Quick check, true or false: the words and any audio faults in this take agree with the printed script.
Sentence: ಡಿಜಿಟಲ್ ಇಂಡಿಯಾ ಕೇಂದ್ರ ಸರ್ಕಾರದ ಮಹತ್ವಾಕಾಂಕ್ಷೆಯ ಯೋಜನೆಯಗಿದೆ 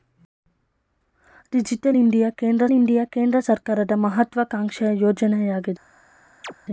false